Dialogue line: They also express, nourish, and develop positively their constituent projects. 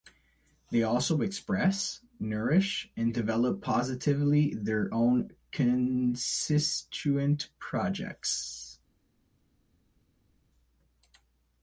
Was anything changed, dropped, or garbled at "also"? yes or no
no